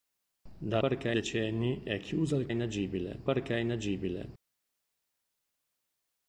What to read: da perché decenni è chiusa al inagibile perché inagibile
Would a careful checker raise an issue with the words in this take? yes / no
no